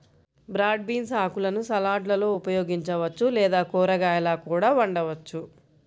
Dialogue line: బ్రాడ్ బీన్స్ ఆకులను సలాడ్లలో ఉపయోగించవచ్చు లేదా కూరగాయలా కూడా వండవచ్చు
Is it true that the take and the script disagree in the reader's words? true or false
false